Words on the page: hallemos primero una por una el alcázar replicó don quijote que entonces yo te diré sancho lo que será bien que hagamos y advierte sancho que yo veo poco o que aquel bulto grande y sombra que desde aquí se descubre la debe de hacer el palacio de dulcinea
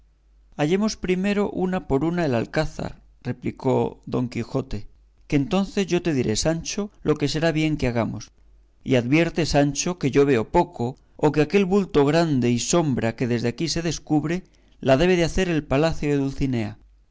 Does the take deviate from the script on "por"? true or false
false